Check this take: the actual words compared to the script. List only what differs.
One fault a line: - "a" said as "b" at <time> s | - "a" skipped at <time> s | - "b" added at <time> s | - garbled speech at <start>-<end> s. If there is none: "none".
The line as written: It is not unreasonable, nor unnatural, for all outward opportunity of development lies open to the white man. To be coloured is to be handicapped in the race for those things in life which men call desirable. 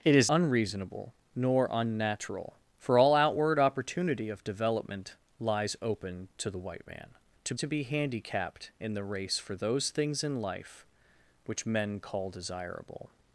- "not" skipped at 0.3 s
- "be coloured is" skipped at 7.5 s